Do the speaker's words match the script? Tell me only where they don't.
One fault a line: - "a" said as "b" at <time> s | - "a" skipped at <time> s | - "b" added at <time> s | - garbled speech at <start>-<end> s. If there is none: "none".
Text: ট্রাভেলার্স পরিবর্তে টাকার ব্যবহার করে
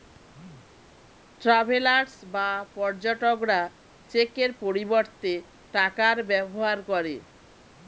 - "বা পর্যটকরা চেকের" added at 2.3 s